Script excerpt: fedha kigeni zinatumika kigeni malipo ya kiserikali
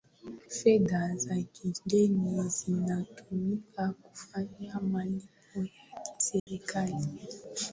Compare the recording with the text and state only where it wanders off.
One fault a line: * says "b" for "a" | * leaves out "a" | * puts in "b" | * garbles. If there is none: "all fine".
* puts in "za"
* says "kufanya" for "kigeni"